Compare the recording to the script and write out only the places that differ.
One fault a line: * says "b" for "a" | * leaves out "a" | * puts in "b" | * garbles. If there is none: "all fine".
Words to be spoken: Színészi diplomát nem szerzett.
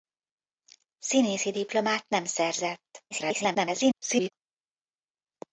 * garbles